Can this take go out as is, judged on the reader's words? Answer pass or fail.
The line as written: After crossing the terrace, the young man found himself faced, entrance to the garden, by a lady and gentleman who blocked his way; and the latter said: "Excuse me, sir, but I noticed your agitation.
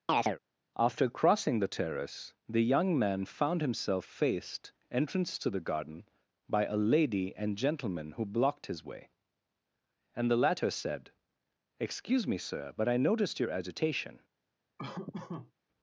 pass